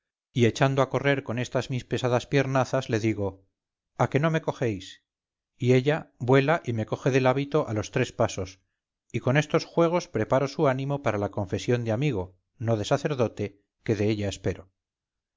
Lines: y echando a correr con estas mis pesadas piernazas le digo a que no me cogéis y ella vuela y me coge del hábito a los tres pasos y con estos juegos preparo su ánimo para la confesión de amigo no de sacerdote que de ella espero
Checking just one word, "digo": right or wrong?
right